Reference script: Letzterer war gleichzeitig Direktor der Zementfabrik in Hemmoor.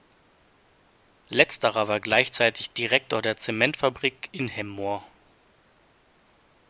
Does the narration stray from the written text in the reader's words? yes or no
no